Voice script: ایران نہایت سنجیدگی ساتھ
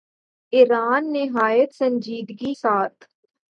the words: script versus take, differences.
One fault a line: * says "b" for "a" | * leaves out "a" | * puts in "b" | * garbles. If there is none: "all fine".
all fine